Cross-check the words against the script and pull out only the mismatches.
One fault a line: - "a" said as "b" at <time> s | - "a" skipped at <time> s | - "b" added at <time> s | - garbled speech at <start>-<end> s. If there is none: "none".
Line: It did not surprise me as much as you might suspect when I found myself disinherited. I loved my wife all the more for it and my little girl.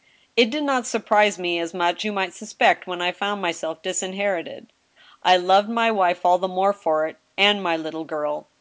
- "as" skipped at 2.1 s